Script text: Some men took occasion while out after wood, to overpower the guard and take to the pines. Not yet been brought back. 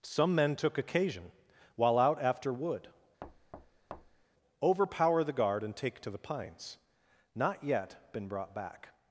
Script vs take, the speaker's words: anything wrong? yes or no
yes